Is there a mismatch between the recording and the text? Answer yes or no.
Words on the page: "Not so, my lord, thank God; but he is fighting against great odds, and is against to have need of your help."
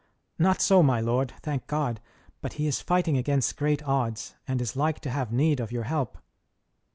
yes